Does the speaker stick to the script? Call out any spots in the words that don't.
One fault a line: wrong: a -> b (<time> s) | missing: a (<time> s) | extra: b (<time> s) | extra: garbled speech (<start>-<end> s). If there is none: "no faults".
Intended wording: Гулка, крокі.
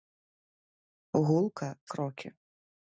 no faults